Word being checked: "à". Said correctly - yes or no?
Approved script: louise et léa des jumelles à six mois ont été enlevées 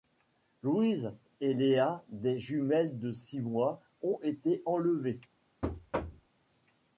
no